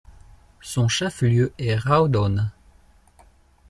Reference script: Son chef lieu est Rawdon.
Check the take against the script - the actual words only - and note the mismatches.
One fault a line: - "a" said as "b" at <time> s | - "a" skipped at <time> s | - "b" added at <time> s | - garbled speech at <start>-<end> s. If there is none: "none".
none